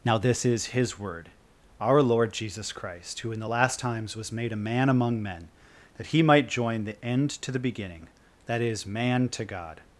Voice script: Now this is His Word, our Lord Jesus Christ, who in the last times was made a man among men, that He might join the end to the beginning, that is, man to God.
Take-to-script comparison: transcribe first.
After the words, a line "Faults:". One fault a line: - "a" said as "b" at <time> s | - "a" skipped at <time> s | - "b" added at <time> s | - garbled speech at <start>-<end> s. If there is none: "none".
Now this is His Word, our Lord Jesus Christ, who in the last times was made a man among men, that He might join the end to the beginning, that is, man to God.
Faults:
none